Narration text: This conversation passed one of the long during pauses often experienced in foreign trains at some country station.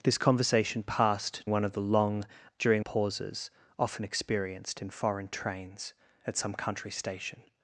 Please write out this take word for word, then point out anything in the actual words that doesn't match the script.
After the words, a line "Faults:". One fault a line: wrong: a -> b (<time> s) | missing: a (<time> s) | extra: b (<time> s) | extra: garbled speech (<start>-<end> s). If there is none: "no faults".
This conversation passed one of the long during pauses often experienced in foreign trains at some country station.
Faults:
no faults